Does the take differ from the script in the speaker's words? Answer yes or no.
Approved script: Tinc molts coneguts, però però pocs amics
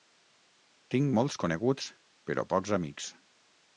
yes